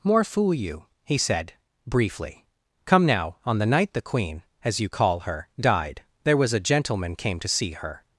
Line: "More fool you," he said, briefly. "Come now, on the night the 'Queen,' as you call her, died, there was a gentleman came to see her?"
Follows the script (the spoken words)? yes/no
yes